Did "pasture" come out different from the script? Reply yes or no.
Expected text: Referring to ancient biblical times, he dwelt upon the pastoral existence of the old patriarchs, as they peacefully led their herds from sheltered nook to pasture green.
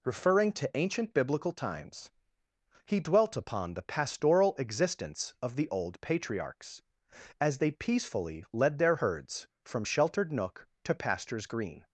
yes